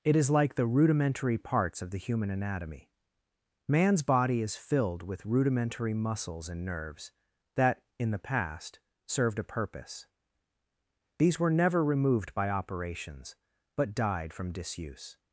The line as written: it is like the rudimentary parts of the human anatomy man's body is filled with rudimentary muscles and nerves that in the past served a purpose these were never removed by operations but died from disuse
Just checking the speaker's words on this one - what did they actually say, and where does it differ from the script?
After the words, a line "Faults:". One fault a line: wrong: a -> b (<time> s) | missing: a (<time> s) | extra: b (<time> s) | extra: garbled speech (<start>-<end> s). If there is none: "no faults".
it is like the rudimentary parts of the human anatomy man's body is filled with rudimentary muscles and nerves that in the past served a purpose these were never removed by operations but died from disuse
Faults:
no faults